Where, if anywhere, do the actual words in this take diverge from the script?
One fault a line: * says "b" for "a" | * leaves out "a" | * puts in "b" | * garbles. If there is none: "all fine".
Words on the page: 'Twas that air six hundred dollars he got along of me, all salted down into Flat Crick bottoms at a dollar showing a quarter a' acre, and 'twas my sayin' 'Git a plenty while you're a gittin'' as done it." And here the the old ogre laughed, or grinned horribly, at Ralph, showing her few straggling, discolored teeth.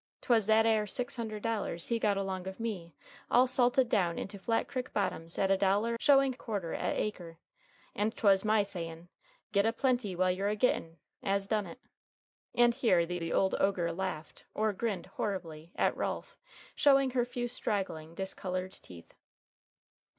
all fine